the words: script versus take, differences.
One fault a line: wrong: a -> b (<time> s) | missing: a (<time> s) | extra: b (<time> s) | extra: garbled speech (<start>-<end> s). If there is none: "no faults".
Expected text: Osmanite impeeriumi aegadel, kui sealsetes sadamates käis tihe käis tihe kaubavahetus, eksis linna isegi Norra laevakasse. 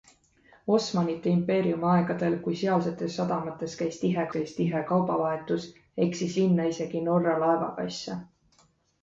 no faults